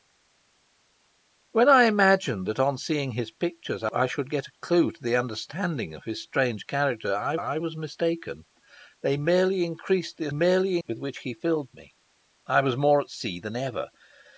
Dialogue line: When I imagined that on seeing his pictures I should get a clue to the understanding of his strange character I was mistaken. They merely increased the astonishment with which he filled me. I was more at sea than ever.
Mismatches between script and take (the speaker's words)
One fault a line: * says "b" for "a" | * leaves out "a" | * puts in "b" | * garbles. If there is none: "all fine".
* puts in "I"
* says "merely" for "astonishment"